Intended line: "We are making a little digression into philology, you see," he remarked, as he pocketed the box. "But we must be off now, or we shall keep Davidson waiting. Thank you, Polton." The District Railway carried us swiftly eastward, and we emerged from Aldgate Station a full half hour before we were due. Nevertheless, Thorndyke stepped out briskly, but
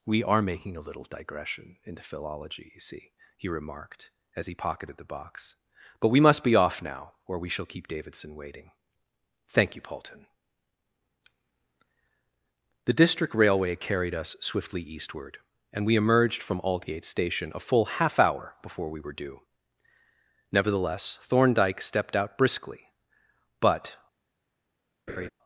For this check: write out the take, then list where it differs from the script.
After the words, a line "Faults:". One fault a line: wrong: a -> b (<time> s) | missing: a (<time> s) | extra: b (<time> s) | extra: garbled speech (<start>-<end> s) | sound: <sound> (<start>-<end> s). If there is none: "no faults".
"We are making a little digression into philology, you see," he remarked, as he pocketed the box. "But we must be off now, or we shall keep Davidson waiting. Thank you, Polton." The District Railway carried us swiftly eastward, and we emerged from Aldgate Station a full half hour before we were due. Nevertheless, Thorndyke stepped out briskly, but
Faults:
sound: laugh (25.1-25.3 s)